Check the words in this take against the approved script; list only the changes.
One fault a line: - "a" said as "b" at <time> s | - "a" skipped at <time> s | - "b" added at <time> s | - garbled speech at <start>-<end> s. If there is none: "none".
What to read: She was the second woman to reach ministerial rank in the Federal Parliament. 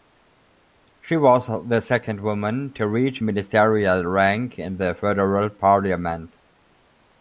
none